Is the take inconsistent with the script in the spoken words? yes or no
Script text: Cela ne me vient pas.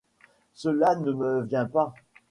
no